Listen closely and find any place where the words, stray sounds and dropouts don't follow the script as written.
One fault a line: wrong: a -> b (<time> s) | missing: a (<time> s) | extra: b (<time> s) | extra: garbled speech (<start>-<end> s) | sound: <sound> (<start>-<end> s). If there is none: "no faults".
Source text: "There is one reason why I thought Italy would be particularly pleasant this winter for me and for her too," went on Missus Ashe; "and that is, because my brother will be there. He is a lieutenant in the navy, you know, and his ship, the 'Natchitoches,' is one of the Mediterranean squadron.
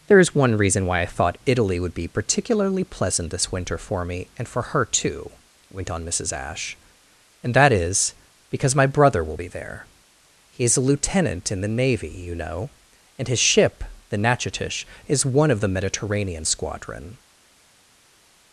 no faults